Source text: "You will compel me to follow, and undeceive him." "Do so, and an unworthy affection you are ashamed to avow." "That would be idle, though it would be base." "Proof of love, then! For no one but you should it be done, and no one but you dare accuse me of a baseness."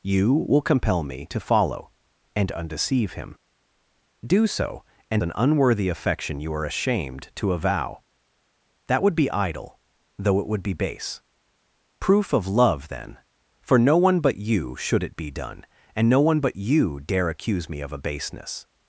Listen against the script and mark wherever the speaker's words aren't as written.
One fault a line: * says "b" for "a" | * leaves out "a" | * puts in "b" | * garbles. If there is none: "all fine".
all fine